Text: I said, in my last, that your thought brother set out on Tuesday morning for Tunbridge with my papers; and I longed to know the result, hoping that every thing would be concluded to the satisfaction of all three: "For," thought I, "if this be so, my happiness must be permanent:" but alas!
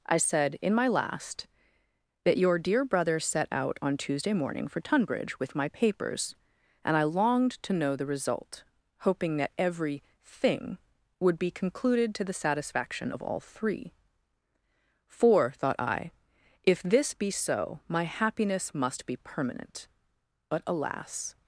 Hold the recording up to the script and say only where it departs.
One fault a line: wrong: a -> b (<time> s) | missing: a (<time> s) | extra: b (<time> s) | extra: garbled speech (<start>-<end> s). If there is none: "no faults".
wrong: thought -> dear (2.6 s)